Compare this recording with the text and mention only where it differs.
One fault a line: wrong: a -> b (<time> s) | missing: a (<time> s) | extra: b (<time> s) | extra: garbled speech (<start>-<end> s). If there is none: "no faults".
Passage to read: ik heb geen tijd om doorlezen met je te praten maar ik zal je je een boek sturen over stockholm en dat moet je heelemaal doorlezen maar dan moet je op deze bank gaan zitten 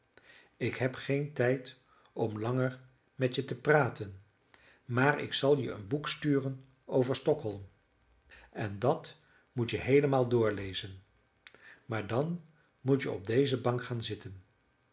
wrong: doorlezen -> langer (2.4 s)
missing: je (5.7 s)